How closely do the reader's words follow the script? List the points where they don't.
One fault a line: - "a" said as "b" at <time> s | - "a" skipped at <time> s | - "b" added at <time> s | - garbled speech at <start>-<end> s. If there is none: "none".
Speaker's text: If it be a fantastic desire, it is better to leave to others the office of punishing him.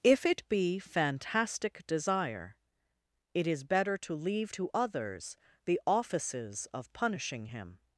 - "a" skipped at 0.8 s
- "office" said as "offices" at 5.9 s